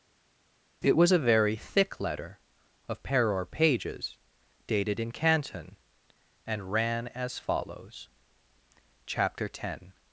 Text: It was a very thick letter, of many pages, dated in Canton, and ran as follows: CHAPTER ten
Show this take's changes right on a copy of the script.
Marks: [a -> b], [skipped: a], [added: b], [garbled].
It was a very thick letter, of [many -> peror] pages, dated in Canton, and ran as follows: CHAPTER ten